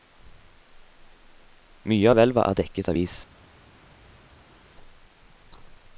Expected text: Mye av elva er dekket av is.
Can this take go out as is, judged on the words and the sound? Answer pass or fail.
pass